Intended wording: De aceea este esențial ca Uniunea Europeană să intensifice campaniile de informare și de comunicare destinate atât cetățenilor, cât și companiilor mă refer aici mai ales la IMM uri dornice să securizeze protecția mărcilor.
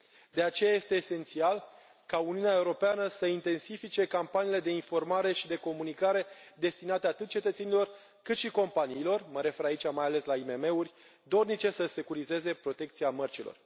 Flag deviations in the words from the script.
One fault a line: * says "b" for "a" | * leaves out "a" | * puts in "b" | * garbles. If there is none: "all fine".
all fine